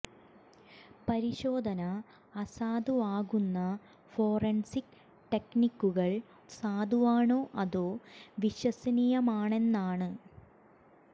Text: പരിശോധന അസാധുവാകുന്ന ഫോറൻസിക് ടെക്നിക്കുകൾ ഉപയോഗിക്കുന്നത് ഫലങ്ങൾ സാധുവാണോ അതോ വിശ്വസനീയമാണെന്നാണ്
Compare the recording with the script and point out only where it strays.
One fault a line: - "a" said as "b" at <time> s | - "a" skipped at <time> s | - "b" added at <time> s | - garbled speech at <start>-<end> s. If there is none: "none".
- "ഉപയോഗിക്കുന്നത് ഫലങ്ങൾ" skipped at 6.1 s